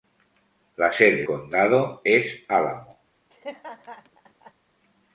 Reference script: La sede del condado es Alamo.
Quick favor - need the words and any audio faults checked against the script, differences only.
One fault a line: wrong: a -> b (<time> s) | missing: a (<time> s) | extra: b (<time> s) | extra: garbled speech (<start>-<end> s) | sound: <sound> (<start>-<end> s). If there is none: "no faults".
missing: del (1.3 s)
sound: laugh (3.3-4.5 s)